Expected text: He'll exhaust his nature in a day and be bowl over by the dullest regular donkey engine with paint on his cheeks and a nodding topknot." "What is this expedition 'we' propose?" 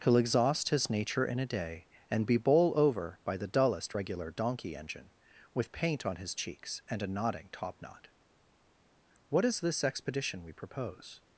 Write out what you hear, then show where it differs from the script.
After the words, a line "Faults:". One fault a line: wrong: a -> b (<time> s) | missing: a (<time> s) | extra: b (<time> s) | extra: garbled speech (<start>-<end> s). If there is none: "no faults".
He'll exhaust his nature in a day and be bowl over by the dullest regular donkey engine with paint on his cheeks and a nodding topknot." "What is this expedition 'we' propose?"
Faults:
no faults